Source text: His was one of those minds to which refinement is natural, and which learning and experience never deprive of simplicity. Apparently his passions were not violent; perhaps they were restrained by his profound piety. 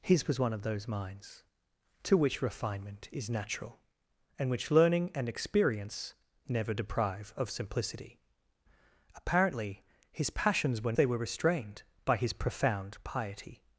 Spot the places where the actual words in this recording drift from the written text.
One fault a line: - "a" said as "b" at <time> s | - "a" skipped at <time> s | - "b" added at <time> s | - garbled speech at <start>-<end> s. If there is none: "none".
- "not violent perhaps" skipped at 11.0 s